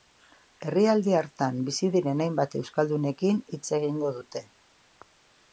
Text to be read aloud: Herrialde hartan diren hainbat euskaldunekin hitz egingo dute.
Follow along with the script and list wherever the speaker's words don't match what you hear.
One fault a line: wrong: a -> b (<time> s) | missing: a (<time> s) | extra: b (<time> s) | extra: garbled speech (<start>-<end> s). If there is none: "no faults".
extra: bizi (1.7 s)